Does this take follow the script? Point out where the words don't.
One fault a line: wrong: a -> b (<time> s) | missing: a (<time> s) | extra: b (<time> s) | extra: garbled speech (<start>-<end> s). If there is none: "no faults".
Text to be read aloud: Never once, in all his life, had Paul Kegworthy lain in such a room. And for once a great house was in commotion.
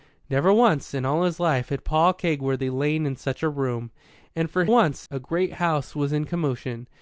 no faults